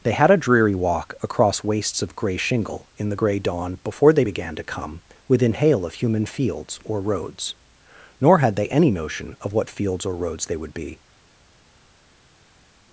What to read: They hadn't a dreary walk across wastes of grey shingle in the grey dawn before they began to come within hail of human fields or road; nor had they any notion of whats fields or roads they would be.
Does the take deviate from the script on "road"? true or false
true